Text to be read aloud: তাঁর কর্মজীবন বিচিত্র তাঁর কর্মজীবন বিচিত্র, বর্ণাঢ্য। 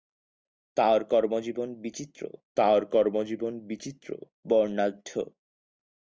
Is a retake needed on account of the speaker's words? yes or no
no